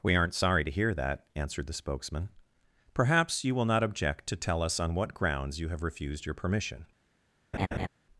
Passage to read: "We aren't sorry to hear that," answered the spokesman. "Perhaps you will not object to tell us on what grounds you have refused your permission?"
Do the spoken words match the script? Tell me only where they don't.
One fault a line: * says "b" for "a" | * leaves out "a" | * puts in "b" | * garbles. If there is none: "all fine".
all fine